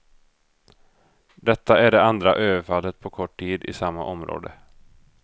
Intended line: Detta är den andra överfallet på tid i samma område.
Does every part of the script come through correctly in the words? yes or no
no